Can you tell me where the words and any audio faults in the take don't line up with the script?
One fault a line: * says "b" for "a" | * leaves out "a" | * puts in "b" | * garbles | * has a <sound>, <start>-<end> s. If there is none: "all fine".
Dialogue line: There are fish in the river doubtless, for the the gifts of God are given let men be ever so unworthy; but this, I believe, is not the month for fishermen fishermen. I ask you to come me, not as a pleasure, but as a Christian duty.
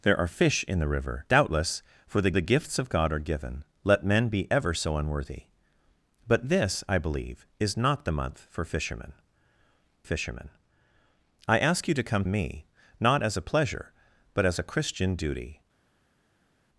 all fine